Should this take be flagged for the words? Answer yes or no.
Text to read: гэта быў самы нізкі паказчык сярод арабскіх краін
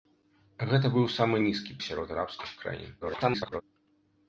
yes